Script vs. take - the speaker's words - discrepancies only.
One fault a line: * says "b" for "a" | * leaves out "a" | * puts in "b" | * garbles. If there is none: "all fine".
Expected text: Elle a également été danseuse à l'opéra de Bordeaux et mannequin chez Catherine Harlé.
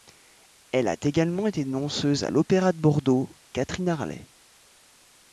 * leaves out "et mannequin chez"